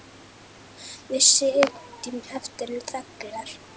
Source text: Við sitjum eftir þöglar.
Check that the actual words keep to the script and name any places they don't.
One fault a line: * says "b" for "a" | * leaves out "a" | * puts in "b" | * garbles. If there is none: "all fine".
all fine